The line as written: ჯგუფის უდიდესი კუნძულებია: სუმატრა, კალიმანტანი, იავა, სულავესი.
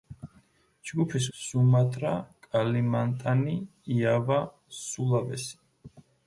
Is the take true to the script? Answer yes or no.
no